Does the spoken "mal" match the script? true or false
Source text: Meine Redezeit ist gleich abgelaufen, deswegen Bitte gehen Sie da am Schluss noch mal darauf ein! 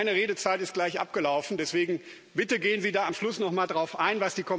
true